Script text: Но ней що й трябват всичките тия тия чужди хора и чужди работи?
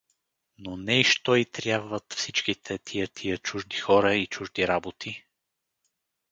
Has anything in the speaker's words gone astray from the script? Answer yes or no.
no